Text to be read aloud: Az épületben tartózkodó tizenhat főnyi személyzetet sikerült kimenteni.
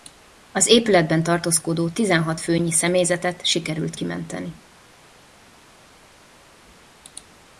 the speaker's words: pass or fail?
pass